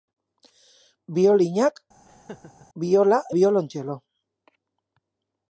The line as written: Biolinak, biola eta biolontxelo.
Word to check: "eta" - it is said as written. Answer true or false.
false